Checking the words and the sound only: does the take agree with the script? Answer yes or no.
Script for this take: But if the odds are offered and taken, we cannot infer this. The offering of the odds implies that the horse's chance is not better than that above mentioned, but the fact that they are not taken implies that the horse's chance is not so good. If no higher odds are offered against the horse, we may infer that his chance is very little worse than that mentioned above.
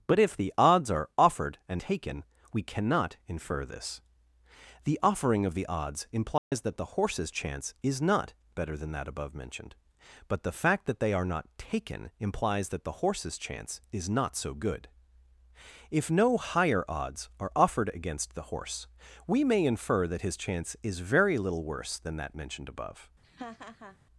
no